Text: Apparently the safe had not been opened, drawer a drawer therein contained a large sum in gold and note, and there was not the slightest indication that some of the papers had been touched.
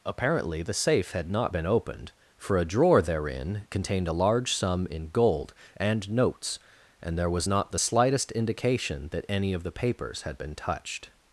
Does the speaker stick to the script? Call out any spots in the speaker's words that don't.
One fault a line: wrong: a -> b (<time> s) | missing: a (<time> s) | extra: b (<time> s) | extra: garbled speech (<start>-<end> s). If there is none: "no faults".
wrong: drawer -> for (2.4 s)
wrong: note -> notes (6.1 s)
wrong: some -> any (9.3 s)